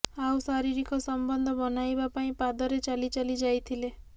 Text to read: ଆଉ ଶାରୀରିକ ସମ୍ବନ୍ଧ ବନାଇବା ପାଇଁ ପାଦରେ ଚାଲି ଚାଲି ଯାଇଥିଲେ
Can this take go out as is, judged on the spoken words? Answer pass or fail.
pass